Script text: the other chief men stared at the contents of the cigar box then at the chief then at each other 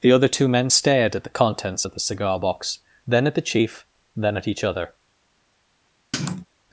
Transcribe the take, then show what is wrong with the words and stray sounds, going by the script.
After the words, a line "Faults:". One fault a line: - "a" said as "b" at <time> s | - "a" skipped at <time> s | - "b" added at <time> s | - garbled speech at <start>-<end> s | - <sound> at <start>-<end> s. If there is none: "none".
the other two men stared at the contents of the cigar box then at the chief then at each other
Faults:
- "chief" said as "two" at 0.3 s
- sniff at 6.1-6.5 s